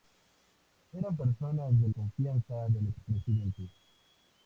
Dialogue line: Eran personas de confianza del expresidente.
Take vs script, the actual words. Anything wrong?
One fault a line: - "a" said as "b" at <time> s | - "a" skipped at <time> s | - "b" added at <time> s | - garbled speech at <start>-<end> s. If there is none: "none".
none